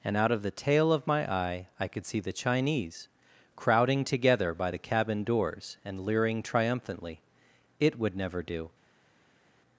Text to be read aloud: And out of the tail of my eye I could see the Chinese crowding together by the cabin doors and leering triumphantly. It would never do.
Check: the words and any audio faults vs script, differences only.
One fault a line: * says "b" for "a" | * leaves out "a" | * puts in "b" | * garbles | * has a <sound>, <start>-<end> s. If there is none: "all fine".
all fine